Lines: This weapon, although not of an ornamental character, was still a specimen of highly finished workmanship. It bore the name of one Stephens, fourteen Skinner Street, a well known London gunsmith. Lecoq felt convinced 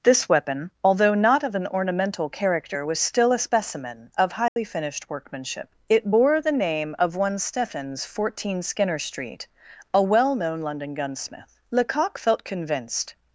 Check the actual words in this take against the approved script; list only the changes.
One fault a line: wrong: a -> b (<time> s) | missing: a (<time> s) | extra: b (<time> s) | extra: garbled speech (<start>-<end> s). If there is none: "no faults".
no faults